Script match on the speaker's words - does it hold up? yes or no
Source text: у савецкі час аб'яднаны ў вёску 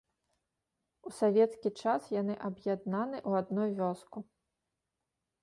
no